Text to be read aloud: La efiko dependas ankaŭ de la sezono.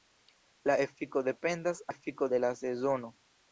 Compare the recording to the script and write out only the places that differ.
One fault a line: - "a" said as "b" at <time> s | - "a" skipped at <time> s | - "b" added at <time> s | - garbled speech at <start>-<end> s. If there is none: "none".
- "ankaŭ" said as "efiko" at 1.9 s